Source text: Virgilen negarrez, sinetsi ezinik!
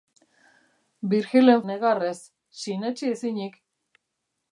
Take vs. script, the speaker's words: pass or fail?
pass